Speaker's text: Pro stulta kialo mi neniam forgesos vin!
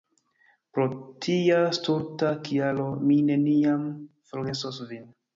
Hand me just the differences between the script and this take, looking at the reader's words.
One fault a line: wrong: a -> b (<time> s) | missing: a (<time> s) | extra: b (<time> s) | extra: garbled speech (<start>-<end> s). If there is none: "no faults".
extra: tia (1.2 s)